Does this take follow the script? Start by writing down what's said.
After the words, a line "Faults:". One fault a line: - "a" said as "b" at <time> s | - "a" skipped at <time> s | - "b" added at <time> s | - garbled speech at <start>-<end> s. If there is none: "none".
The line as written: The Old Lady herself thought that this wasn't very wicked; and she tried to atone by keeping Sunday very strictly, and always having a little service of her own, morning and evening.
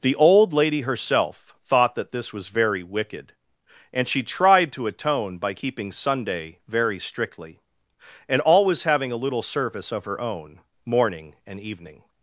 The Old Lady herself thought that this was very wicked; and she tried to atone by keeping Sunday very strictly, and always having a little service of her own, morning and evening.
Faults:
- "wasn't" said as "was" at 2.3 s